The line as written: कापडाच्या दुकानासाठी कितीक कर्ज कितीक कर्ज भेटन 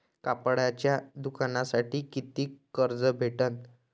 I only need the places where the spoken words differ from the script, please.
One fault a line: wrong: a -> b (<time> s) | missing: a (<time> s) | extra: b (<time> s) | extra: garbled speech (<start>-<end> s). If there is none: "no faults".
missing: कितीक कर्ज (3.0 s)